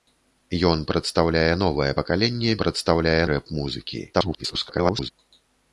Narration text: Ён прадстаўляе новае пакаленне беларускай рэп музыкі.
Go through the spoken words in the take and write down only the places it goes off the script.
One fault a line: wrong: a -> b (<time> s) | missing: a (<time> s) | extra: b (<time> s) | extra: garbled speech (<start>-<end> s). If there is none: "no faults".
wrong: беларускай -> прадстаўляе (2.6 s)
extra: garbled speech (4.1-5.1 s)